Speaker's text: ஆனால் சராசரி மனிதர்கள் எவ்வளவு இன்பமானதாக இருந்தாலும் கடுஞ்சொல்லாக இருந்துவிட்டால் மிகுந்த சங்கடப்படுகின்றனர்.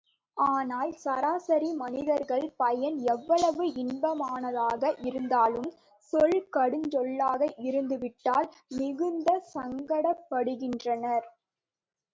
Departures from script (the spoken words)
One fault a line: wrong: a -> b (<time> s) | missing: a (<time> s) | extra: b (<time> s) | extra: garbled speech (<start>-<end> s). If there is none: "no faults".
extra: பயன் (2.6 s)
extra: சொல் (6.1 s)